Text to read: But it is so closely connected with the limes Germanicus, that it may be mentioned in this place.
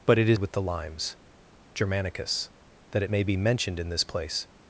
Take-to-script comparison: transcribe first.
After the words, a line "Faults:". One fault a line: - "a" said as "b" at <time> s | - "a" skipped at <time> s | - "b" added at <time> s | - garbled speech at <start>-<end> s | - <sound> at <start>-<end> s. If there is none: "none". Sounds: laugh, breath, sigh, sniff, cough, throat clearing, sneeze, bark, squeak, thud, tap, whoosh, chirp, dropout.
But it is with the limes Germanicus, that it may be mentioned in this place.
Faults:
- "so closely connected" skipped at 0.4 s